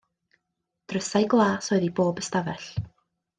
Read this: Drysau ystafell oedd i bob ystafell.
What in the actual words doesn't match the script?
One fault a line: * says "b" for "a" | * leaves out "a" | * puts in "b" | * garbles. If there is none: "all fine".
* says "glas" for "ystafell"